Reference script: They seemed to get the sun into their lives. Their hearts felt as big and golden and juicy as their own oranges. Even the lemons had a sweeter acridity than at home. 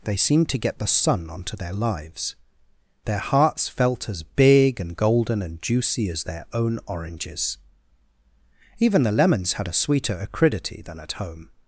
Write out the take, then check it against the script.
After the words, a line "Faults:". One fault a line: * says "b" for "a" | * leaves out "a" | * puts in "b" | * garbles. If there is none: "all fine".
They seemed to get the sun onto their lives. Their hearts felt as big and golden and juicy as their own oranges. Even the lemons had a sweeter acridity than at home.
Faults:
* says "onto" for "into"